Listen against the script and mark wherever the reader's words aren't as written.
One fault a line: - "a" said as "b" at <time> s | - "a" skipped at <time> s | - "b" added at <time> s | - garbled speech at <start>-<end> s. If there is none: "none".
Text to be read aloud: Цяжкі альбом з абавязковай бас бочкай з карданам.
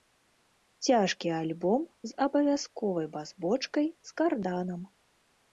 none